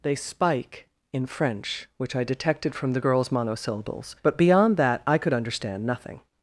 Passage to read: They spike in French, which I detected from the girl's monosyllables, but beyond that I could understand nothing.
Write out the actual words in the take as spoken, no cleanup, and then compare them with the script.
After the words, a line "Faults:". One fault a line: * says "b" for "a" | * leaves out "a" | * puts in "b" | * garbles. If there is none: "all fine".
They spike in French, which I detected from the girl's monosyllables, but beyond that I could understand nothing.
Faults:
all fine